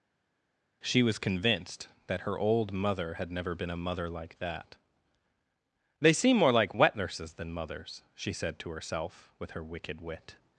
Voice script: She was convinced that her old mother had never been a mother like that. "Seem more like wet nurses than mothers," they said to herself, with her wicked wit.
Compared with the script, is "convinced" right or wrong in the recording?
right